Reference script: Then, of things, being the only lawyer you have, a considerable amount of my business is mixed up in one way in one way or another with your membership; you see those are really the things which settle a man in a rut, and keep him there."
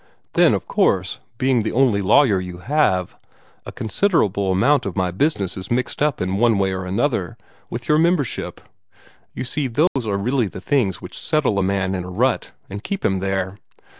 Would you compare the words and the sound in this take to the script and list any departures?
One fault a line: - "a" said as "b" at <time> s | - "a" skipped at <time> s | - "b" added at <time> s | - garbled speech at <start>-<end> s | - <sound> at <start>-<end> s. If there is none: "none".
- "things" said as "course" at 0.7 s
- "in one way" skipped at 6.7 s
- dropout at 9.9-10.0 s